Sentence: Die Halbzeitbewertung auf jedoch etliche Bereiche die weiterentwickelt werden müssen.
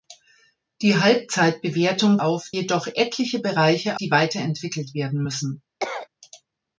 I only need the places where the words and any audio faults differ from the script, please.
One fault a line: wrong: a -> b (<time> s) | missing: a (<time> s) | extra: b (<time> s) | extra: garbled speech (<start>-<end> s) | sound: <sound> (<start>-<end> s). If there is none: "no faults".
sound: cough (5.8-6.1 s)